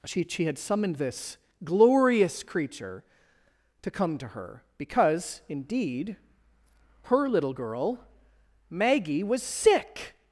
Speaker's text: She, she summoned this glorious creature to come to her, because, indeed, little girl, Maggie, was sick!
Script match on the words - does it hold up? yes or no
no